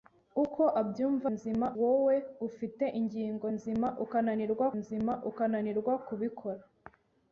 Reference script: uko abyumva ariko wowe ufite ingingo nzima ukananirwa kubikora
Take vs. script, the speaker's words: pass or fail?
fail